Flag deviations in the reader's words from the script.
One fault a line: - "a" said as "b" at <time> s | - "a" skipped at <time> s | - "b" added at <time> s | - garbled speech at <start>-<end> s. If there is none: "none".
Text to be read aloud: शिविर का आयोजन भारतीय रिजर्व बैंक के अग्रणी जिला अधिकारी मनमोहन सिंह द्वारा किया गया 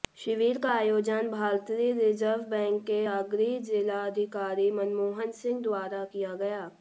none